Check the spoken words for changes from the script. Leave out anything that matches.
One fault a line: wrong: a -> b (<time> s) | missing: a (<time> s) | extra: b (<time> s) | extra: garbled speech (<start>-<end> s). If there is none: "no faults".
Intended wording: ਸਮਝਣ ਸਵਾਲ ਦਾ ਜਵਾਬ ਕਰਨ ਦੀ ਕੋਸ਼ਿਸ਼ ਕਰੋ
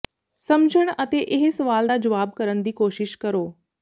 extra: ਅਤੇ ਇਹ (1.0 s)